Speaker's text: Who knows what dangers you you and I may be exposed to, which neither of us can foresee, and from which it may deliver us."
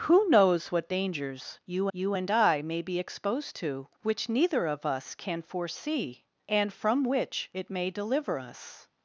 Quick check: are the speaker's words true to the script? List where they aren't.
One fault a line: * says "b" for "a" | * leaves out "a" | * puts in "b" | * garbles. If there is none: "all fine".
all fine